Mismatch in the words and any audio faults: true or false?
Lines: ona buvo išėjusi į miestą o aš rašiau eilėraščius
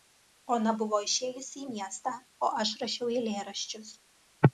false